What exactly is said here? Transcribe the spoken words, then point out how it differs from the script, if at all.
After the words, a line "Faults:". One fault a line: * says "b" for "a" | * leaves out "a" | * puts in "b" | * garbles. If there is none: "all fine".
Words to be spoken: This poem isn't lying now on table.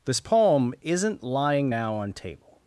This poem isn't lying now on table.
Faults:
all fine